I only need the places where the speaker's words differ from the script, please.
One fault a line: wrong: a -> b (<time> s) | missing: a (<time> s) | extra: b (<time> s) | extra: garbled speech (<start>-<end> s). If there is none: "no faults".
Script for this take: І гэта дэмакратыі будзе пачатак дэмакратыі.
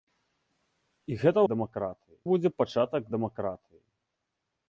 no faults